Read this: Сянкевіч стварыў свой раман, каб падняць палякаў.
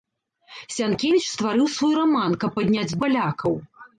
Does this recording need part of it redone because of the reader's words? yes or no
no